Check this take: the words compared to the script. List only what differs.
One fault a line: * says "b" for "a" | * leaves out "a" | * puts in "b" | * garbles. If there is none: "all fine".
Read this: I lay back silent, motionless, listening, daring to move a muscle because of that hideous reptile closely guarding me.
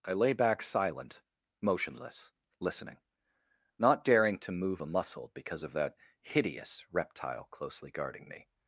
* puts in "not"